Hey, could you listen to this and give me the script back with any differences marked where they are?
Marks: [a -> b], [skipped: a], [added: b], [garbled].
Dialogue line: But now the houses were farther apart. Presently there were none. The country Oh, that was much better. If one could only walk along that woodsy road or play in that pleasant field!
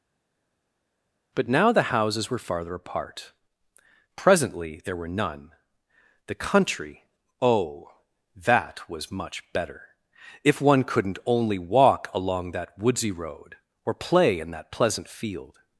But now the houses were farther apart. Presently there were none. The country Oh, that was much better. If one [could -> couldn't] only walk along that woodsy road or play in that pleasant field!